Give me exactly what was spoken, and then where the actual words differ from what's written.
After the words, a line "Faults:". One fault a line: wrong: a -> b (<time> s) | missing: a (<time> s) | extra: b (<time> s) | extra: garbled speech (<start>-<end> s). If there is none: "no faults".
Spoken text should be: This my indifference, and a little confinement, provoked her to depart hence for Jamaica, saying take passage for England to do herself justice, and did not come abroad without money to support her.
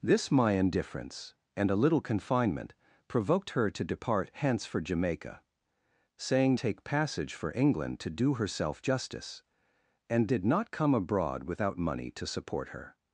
This my indifference, and a little confinement, provoked her to depart hence for Jamaica, saying take passage for England to do herself justice, and did not come abroad without money to support her.
Faults:
no faults